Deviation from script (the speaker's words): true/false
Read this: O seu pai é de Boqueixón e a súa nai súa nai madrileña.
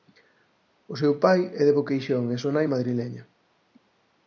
true